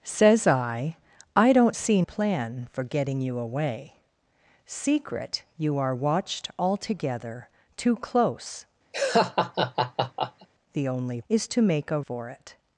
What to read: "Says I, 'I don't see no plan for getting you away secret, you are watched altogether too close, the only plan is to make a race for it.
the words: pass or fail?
fail